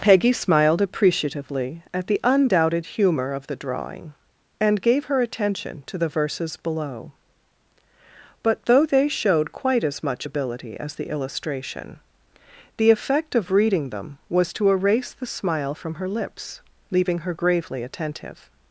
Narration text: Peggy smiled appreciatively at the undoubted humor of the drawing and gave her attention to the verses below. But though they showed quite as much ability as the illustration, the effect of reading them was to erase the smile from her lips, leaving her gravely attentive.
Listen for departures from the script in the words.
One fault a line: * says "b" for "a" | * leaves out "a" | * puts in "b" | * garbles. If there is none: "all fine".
all fine